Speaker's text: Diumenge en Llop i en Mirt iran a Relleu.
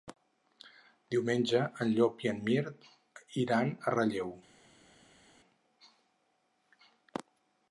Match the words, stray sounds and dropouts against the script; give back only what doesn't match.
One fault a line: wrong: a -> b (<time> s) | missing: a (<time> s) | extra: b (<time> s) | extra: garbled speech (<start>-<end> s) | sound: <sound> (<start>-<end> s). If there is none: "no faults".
no faults